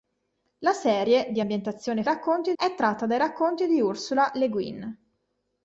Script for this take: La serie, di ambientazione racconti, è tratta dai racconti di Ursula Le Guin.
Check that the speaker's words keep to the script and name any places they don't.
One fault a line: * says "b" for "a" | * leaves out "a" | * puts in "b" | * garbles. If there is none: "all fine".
all fine